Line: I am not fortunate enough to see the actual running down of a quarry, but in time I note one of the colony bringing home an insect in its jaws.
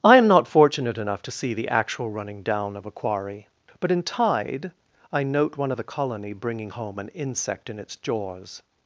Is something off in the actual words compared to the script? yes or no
yes